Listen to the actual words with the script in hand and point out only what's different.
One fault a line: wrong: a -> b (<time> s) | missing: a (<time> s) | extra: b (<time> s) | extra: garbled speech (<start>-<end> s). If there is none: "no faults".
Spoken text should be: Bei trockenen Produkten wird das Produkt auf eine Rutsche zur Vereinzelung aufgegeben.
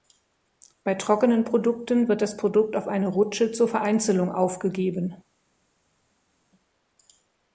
no faults